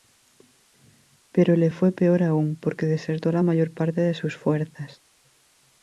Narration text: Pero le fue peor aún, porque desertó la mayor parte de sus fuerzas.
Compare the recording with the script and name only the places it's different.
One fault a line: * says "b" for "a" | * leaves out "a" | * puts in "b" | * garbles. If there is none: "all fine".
all fine